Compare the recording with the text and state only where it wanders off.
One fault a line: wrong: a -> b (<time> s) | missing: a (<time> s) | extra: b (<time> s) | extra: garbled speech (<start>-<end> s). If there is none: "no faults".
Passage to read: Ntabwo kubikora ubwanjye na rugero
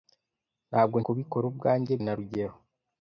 no faults